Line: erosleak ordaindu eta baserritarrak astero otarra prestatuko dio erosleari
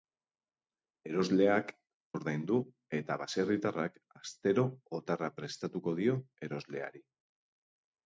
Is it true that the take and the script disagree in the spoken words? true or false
false